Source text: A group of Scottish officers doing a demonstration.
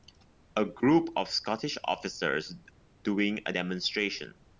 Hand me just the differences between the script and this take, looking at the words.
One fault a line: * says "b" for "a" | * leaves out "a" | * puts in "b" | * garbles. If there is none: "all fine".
all fine